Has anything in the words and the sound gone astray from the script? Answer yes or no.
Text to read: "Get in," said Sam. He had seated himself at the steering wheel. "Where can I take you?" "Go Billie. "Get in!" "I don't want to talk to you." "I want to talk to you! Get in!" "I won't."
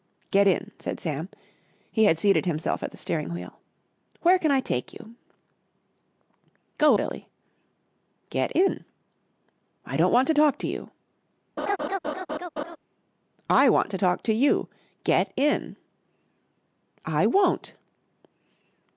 yes